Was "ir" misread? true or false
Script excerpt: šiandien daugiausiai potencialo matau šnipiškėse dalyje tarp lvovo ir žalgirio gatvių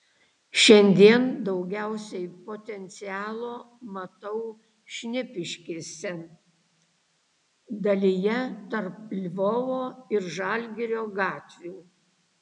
false